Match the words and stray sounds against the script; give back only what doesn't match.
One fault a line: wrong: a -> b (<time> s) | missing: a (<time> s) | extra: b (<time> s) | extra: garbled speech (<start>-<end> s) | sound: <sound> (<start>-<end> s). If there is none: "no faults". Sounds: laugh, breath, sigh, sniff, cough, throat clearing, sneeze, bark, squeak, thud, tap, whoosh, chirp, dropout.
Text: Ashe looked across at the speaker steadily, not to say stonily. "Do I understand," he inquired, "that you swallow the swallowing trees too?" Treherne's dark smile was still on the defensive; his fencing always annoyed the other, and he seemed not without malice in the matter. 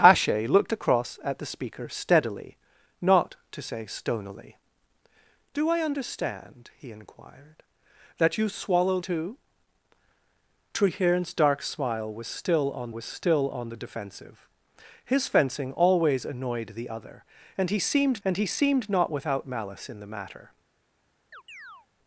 missing: the swallowing trees (9.0 s)
extra: was still on (12.9 s)
extra: and he seemed (18.2 s)
sound: chirp (21.3-21.9 s)